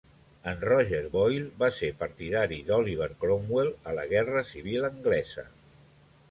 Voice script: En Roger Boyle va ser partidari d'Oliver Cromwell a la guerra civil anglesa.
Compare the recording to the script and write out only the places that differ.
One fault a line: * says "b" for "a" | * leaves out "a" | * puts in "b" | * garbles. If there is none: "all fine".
all fine